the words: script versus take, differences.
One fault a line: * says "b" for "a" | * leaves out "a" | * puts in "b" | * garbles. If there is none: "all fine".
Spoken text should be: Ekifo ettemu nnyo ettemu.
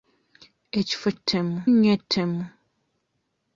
all fine